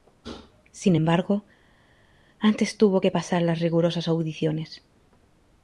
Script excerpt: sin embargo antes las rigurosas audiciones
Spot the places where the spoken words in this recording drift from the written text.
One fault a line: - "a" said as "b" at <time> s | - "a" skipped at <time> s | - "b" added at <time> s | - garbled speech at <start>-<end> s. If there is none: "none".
- "tuvo que pasar" added at 2.8 s